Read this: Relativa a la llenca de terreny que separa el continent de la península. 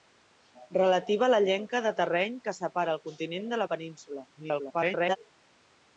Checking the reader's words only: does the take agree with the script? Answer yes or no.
no